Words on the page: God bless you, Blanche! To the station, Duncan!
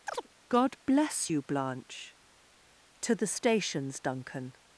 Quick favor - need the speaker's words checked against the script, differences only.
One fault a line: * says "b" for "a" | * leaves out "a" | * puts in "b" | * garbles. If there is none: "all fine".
* says "stations" for "station"